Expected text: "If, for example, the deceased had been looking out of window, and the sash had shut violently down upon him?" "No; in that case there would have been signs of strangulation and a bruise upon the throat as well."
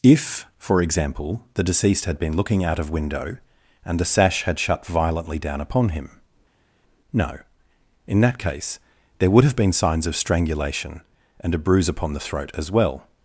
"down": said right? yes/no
yes